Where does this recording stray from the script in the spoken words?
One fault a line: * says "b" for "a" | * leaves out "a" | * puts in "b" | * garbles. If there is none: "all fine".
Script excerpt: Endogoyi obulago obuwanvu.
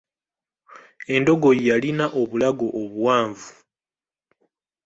* puts in "yalina"